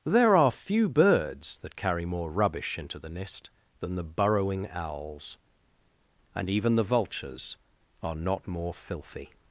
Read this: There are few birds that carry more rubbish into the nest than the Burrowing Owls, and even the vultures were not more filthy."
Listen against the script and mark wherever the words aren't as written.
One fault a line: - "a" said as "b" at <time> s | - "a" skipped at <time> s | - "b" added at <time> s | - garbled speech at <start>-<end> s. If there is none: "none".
- "were" said as "are" at 8.0 s